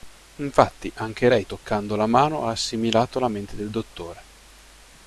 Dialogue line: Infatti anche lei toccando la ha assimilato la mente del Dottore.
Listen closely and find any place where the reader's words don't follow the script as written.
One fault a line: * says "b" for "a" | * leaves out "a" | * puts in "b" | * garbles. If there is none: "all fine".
* puts in "mano"